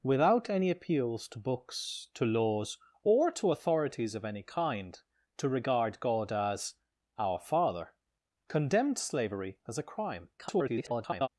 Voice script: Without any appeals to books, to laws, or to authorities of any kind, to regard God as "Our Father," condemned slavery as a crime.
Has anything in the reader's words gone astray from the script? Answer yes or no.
yes